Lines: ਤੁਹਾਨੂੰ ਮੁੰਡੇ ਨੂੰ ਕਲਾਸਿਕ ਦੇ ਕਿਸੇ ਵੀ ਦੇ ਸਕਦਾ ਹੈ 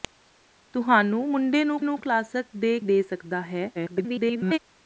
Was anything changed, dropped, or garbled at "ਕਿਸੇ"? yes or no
yes